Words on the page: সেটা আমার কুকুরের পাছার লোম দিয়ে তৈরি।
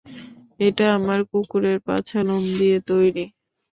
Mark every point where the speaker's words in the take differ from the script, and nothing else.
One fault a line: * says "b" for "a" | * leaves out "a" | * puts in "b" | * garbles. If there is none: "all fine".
* says "এটা" for "সেটা"